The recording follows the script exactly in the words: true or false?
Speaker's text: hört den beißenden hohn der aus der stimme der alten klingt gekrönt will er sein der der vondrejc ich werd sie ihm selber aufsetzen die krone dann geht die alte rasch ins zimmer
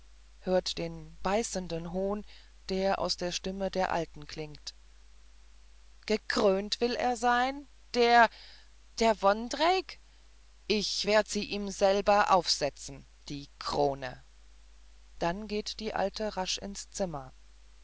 true